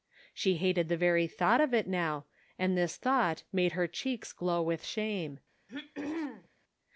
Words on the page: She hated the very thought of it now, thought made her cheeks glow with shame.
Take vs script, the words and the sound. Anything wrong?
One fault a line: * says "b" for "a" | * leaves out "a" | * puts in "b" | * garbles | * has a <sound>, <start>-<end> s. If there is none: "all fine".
* puts in "and this"
* has a throat clearing, 5.7-6.5 s